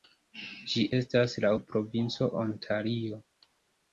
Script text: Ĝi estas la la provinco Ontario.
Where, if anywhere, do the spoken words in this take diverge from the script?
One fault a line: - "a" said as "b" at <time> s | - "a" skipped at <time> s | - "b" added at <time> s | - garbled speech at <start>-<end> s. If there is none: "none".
none